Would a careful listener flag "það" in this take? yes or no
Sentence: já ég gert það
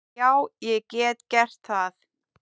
no